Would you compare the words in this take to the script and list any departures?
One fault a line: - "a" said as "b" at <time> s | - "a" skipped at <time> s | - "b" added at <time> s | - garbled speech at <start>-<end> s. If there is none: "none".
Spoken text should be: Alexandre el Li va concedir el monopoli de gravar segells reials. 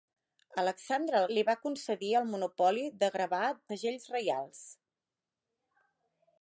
none